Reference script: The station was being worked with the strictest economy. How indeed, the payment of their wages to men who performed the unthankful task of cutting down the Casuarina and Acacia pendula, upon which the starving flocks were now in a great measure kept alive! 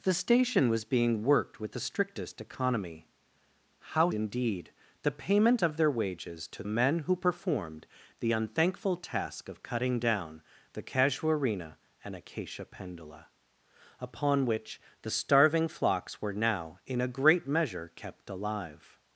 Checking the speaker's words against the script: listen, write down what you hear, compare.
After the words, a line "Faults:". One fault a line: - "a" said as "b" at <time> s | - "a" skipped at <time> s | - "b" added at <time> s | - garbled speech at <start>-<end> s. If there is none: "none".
The station was being worked with the strictest economy. How indeed, the payment of their wages to men who performed the unthankful task of cutting down the Casuarina and Acacia pendula, upon which the starving flocks were now in a great measure kept alive!
Faults:
none